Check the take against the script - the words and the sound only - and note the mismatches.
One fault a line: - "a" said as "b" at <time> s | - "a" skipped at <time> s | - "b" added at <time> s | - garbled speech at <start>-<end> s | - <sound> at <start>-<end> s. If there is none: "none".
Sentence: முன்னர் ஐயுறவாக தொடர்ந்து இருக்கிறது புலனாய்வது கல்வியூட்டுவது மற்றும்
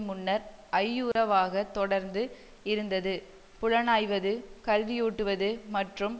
- dropout at 1.1-1.2 s
- "இருக்கிறது" said as "இருந்தது" at 2.6 s